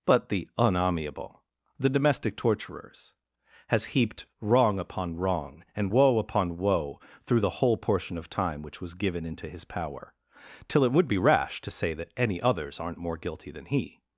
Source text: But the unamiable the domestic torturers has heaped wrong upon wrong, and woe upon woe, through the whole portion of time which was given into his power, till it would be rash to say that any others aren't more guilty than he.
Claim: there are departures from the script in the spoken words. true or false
false